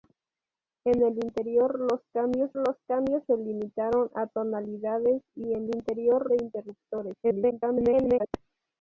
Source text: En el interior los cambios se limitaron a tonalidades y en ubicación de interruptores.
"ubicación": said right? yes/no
no